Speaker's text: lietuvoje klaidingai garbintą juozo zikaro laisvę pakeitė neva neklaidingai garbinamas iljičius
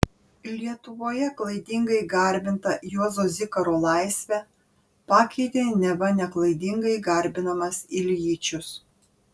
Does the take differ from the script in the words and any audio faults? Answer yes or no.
no